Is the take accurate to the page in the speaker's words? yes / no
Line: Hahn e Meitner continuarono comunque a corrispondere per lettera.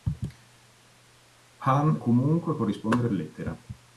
no